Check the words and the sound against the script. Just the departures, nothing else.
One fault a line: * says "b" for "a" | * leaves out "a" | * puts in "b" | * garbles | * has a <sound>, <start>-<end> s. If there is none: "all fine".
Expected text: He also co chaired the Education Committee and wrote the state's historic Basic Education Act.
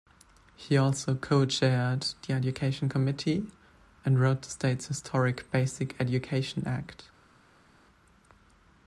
all fine